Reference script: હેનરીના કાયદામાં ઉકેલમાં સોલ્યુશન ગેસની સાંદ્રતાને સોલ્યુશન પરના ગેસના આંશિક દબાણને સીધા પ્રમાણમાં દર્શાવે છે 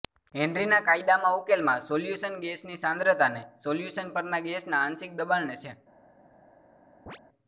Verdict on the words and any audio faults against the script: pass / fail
fail